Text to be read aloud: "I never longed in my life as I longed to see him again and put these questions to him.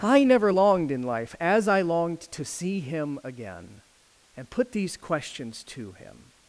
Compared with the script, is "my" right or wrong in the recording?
wrong